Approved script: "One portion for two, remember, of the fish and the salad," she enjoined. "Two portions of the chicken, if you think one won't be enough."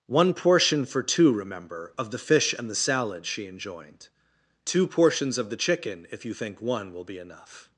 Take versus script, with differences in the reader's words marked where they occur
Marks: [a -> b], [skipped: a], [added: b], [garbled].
"One portion for two, remember, of the fish and the salad," she enjoined. "Two portions of the chicken, if you think one [won't -> will] be enough."